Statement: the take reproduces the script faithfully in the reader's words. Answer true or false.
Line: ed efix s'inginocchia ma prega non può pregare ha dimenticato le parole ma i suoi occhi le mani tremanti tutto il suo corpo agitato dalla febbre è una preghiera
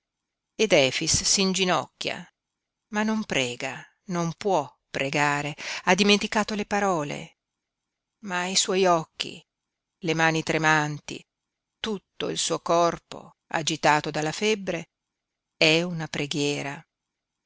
false